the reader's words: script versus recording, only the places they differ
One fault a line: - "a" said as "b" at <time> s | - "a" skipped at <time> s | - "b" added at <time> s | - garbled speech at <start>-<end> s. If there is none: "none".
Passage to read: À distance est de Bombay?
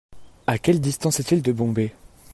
- "quelle" added at 0.6 s
- "il" added at 1.3 s